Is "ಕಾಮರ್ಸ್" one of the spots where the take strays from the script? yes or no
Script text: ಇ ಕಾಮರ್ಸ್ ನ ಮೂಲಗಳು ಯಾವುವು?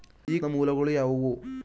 yes